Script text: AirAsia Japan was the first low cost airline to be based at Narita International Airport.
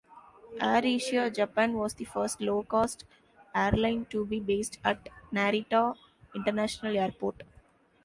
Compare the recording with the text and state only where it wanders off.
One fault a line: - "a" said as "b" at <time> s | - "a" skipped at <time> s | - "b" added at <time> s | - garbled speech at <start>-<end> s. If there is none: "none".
none